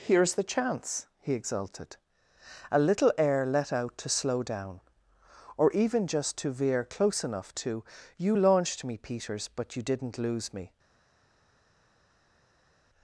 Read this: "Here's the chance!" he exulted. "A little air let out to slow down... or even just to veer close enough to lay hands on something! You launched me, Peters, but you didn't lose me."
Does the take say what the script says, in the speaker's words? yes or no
no